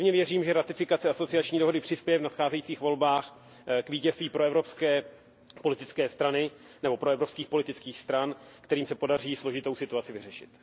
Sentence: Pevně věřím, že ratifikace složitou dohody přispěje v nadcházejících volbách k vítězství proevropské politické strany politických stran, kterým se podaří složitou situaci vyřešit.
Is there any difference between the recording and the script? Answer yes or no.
yes